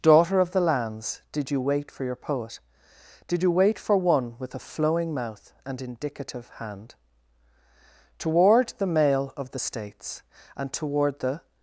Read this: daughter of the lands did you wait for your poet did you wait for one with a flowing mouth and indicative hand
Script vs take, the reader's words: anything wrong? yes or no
yes